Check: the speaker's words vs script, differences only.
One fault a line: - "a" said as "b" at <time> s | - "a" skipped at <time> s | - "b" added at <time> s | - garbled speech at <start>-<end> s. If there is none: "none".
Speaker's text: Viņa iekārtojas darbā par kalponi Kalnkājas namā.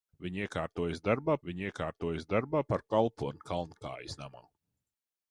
- "viņa iekārtojas darbā" added at 1.5 s